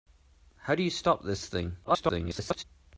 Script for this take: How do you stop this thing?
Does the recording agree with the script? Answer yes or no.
no